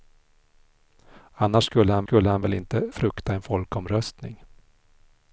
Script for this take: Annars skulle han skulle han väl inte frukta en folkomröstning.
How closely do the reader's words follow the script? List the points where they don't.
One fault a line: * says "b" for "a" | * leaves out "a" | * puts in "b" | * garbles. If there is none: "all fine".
all fine